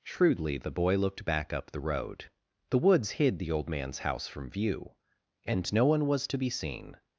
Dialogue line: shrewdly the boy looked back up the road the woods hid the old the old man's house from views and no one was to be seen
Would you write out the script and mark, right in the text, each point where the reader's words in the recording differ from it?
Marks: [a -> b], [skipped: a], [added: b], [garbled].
shrewdly the boy looked back up the road the woods hid the old [skipped: the old] man's house from [views -> view] and no one was to be seen